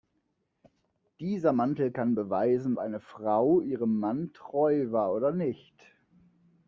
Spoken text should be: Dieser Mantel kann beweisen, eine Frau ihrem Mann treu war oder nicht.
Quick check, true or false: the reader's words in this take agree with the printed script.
true